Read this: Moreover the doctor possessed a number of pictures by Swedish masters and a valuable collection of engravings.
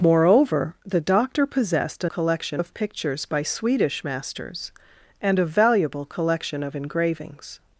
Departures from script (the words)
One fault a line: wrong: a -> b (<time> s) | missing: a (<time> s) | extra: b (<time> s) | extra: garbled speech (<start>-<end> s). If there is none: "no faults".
wrong: number -> collection (2.1 s)